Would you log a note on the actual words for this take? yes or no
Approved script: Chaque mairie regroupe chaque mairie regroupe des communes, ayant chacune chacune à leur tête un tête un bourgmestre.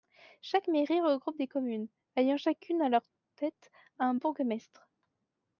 yes